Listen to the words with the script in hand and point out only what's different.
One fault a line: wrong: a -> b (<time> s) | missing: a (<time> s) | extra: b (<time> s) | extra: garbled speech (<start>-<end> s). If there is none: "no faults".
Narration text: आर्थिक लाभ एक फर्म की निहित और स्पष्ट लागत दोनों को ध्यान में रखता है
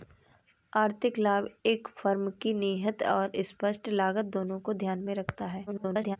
extra: garbled speech (5.7-6.2 s)